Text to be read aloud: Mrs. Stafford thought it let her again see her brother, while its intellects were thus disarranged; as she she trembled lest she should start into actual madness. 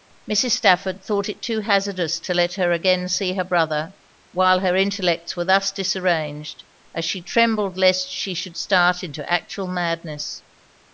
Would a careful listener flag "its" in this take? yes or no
yes